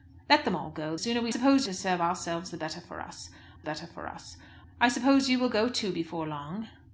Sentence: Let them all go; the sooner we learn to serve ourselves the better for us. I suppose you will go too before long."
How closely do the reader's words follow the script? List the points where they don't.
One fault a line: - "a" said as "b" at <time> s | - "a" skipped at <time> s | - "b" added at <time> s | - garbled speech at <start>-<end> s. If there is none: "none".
- "the" skipped at 0.9 s
- "learn" said as "suppose" at 1.3 s
- "better for us" added at 3.6 s